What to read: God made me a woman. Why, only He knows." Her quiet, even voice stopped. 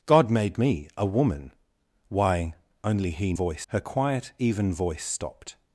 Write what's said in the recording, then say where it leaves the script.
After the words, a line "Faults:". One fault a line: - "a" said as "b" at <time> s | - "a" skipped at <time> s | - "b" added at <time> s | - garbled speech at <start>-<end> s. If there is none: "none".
God made me a woman. Why, only He voice." Her quiet, even voice stopped.
Faults:
- "knows" said as "voice" at 3.3 s